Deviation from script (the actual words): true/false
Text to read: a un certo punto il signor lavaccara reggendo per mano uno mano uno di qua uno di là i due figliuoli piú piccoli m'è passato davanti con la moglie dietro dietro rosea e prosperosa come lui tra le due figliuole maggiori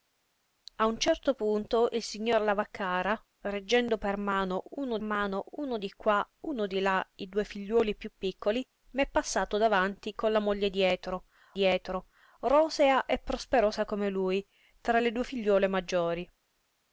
false